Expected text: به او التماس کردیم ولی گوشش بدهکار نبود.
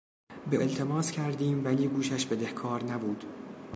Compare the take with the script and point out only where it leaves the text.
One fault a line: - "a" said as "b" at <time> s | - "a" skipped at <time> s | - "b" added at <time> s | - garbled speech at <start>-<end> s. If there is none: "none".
- "او" skipped at 0.6 s